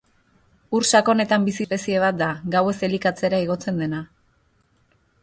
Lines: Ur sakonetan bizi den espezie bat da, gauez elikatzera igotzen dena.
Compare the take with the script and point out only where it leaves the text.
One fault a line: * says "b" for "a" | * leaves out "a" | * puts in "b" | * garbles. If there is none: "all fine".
* leaves out "den"